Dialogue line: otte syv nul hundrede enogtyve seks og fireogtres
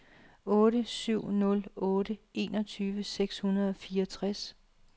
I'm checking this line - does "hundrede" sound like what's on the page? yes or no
no